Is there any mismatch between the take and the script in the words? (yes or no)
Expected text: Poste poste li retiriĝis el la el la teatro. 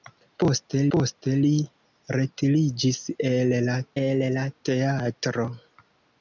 no